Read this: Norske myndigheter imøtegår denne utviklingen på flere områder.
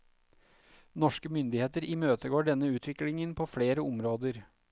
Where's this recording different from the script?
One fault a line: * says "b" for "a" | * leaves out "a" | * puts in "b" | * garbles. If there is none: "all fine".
all fine